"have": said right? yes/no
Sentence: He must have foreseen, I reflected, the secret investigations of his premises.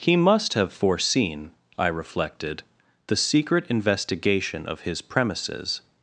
yes